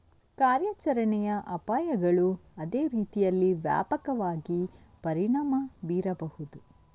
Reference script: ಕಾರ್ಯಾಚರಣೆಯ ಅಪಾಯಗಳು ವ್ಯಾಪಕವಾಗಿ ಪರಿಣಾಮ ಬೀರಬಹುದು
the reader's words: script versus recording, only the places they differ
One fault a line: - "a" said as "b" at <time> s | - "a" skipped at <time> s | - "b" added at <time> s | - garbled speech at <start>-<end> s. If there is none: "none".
- "ಅದೇ ರೀತಿಯಲ್ಲಿ" added at 2.6 s